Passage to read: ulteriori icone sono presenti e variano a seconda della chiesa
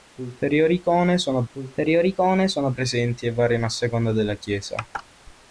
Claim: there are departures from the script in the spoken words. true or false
true